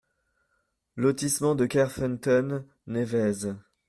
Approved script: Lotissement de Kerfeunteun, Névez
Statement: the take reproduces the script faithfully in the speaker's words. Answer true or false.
true